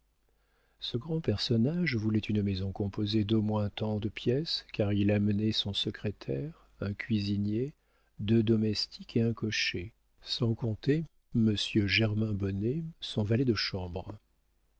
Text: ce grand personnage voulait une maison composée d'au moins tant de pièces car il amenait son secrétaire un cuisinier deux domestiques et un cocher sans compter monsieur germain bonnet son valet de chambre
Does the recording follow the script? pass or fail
pass